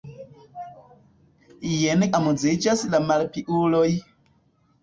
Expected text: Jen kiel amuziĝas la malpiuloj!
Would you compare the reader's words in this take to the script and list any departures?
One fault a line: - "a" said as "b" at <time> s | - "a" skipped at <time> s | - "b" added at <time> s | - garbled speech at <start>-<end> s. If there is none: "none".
- "kiel" skipped at 2.0 s